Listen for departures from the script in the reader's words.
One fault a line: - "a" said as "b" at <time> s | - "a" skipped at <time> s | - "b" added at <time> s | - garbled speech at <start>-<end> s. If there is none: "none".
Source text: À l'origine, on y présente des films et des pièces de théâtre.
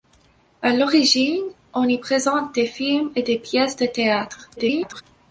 - garbled speech at 4.6-5.0 s